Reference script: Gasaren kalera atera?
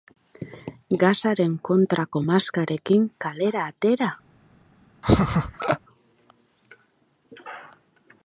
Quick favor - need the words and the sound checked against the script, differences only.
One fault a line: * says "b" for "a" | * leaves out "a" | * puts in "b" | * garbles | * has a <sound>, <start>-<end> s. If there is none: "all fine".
* puts in "kontrako maskarekin"
* has a laugh, 5.0-5.8 s